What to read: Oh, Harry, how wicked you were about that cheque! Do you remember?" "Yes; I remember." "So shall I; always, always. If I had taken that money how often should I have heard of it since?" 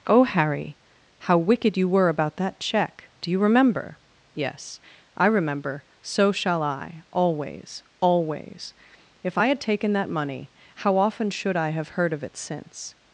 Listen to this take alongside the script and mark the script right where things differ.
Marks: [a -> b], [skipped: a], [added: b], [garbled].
Oh, Harry, how wicked you were about that cheque! Do you remember?" "Yes; I remember." "So shall I; always, always. If I had taken that money how often should I have heard of it since?"